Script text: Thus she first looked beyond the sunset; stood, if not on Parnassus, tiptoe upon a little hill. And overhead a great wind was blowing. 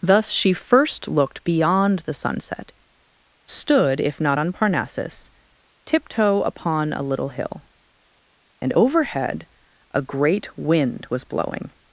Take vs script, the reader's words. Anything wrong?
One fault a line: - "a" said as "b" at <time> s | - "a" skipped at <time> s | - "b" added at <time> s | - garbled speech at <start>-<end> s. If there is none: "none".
none